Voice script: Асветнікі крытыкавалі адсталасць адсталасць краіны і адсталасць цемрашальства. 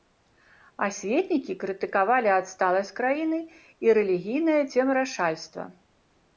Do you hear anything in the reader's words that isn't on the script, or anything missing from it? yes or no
yes